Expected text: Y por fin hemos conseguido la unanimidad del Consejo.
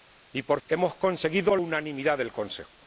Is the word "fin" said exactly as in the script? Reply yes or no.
no